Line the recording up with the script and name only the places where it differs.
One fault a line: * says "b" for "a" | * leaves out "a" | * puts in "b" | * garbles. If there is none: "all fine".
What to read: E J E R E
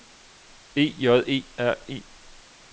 all fine